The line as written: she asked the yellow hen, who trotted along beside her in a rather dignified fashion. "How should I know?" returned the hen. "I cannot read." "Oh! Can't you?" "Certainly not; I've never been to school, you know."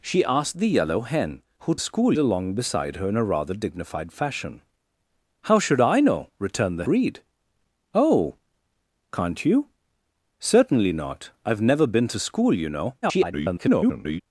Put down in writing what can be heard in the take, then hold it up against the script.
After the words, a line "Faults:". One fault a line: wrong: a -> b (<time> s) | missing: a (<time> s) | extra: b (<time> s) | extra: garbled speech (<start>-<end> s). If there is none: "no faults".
she asked the yellow hen, who school along beside her in a rather dignified fashion. "How should I know?" returned the read." "Oh! Can't you?" "Certainly not; I've never been to school, you know." [garbled]
Faults:
wrong: trotted -> school (1.8 s)
missing: hen I cannot (6.9 s)
extra: garbled speech (13.0-14.2 s)